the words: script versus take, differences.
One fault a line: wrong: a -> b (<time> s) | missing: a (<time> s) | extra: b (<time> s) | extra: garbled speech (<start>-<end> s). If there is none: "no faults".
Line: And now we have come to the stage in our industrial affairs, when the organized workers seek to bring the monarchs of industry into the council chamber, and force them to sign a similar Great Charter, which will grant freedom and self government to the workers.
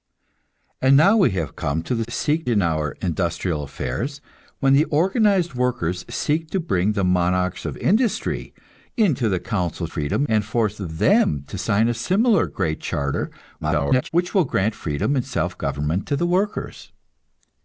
wrong: stage -> seek (2.1 s)
wrong: chamber -> freedom (9.9 s)
extra: garbled speech (13.6-14.1 s)